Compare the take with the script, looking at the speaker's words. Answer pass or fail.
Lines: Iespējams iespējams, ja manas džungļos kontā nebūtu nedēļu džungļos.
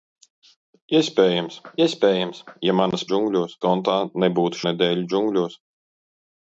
pass